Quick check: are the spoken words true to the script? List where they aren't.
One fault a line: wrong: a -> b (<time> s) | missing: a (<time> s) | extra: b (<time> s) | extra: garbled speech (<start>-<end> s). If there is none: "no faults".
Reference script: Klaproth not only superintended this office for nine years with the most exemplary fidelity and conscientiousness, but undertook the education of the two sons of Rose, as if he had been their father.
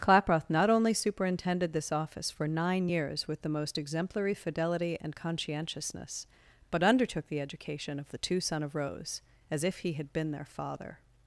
wrong: sons -> son (8.4 s)